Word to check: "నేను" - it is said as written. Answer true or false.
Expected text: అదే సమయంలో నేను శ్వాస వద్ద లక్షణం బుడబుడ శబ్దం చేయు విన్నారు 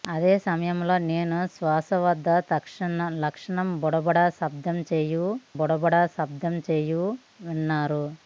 true